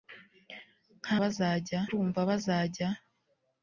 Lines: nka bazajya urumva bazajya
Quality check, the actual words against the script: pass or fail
pass